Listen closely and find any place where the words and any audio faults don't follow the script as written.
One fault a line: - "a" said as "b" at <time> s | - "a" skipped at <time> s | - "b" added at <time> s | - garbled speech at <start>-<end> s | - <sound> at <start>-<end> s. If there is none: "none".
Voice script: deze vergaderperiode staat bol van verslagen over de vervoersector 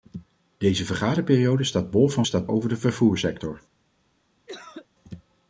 - "verslagen" said as "staat" at 2.2 s
- cough at 4.5-4.9 s